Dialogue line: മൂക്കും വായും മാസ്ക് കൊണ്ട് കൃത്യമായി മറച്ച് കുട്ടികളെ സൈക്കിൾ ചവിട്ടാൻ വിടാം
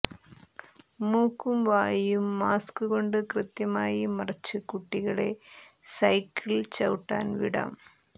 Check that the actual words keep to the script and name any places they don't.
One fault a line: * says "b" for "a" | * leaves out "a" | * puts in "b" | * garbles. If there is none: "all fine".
all fine